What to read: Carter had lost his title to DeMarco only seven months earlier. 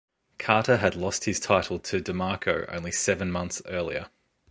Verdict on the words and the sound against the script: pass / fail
pass